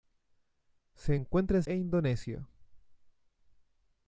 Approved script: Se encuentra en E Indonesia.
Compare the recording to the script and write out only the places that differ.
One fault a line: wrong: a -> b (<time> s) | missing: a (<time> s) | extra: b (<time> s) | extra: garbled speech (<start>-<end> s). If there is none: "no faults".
no faults